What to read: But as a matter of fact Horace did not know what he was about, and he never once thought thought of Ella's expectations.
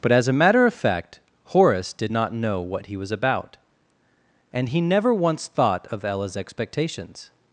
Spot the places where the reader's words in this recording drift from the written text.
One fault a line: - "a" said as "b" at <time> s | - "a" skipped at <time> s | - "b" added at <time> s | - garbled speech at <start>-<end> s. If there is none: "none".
- "thought" skipped at 5.9 s